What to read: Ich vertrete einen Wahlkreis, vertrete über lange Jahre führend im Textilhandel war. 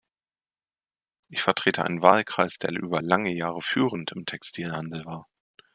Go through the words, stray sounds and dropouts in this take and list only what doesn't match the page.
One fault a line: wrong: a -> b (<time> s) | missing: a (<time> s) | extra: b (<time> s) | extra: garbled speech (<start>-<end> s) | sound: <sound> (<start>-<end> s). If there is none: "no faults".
wrong: vertrete -> der (2.6 s)